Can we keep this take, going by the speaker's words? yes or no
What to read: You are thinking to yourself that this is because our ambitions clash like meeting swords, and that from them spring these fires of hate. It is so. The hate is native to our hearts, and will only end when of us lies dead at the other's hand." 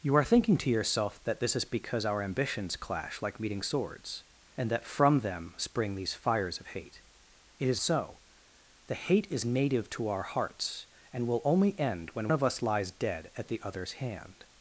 yes